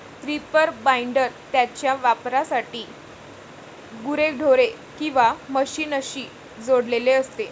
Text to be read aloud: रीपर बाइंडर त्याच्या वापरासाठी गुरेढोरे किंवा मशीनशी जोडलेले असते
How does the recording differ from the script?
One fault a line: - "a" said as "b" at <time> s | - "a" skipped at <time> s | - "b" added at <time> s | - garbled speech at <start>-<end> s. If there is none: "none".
none